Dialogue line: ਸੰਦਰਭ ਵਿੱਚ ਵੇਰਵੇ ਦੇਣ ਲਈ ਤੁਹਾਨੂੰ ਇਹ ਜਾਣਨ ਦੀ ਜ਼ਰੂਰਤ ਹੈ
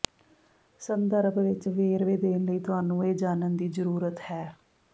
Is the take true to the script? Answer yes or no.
yes